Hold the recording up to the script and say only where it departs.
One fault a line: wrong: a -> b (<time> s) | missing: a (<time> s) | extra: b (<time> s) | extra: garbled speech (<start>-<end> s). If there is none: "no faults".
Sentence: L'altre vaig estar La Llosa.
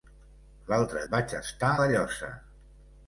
no faults